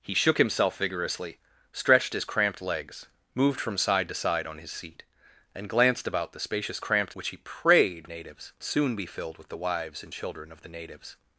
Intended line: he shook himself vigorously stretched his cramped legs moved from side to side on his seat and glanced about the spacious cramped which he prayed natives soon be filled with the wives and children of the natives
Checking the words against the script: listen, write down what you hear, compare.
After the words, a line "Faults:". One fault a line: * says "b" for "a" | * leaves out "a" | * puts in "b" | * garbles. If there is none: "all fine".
he shook himself vigorously stretched his cramped legs moved from side to side on his seat and glanced about the spacious cramped which he prayed natives soon be filled with the wives and children of the natives
Faults:
all fine